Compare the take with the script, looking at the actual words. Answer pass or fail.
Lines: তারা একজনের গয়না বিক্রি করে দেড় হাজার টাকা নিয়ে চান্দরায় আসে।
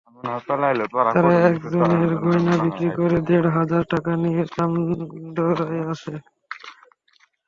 pass